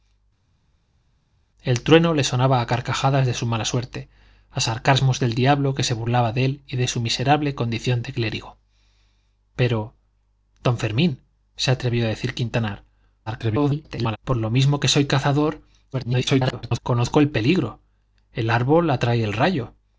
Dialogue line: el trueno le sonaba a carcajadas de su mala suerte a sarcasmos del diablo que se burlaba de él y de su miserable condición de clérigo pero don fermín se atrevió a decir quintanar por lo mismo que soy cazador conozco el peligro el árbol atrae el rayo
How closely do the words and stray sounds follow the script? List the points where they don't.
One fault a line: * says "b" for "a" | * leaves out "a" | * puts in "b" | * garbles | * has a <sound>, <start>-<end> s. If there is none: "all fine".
* garbles
* garbles